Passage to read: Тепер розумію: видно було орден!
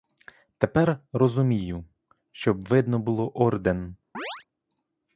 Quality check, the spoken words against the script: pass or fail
fail